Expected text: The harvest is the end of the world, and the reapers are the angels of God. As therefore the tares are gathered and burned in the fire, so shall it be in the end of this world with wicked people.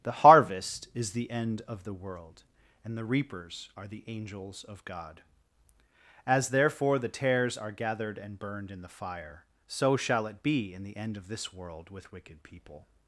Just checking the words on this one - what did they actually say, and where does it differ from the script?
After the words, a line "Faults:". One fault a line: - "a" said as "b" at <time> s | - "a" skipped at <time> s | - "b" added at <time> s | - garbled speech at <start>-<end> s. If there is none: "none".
The harvest is the end of the world, and the reapers are the angels of God. As therefore the tares are gathered and burned in the fire, so shall it be in the end of this world with wicked people.
Faults:
none